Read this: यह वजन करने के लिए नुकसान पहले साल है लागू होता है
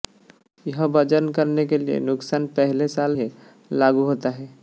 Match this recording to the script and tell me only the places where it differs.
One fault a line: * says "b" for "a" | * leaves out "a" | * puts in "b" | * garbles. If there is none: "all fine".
all fine